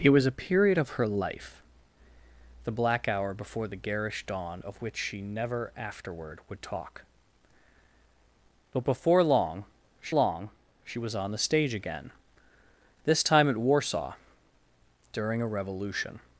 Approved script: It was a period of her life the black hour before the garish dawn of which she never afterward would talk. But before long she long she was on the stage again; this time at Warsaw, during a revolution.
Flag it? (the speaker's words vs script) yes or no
no